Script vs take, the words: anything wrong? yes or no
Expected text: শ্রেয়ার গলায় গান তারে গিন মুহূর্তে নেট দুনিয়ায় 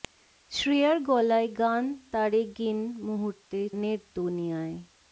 no